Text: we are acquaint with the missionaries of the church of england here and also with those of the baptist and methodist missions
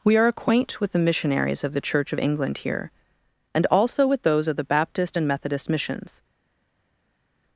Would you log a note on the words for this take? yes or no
no